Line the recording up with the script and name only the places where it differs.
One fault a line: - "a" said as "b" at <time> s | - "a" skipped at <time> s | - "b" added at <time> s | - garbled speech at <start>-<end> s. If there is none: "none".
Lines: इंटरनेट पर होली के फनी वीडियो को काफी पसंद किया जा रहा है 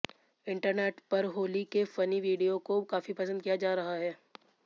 none